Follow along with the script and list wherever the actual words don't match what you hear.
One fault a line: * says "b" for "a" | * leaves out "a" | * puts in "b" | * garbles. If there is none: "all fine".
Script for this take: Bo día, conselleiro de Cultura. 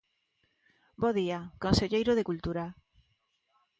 all fine